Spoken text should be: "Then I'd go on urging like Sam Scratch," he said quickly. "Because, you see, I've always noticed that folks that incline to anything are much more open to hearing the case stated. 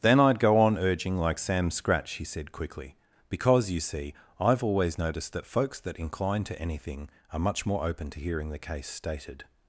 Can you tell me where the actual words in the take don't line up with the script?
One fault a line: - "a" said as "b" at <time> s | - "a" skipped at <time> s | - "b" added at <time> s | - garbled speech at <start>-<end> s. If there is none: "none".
none